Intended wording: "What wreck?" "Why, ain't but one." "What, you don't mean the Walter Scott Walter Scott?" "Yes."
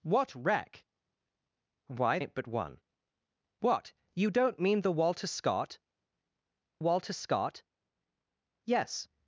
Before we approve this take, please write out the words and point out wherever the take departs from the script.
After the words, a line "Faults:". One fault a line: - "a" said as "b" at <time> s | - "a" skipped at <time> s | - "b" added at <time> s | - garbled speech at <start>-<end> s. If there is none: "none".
"What wreck?" "Why, ain't but one." "What, you don't mean the Walter Scott Walter Scott?" "Yes."
Faults:
none